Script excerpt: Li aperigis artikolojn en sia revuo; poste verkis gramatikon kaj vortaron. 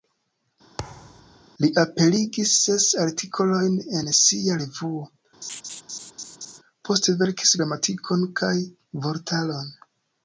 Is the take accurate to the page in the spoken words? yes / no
no